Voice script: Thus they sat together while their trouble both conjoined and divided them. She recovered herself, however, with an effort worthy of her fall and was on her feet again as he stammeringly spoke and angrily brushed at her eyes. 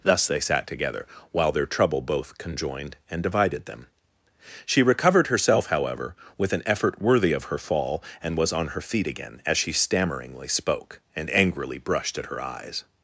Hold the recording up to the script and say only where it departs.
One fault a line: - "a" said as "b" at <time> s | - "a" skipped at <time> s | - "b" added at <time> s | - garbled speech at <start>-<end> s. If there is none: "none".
- "he" said as "she" at 9.6 s